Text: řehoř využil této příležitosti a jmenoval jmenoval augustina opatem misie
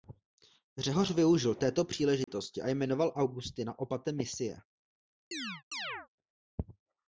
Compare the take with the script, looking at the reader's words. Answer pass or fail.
fail